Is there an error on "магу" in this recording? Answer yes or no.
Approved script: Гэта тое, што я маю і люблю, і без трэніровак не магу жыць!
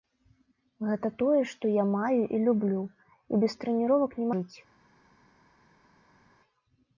yes